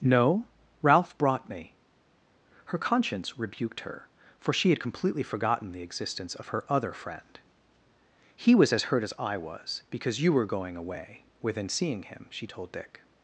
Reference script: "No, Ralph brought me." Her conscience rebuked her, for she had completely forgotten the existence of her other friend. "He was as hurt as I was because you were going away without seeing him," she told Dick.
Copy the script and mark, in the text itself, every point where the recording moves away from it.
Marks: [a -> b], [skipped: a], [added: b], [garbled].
"No, Ralph brought me." Her conscience rebuked her, for she had completely forgotten the existence of her other friend. "He was as hurt as I was because you were going away [without -> within] seeing him," she told Dick.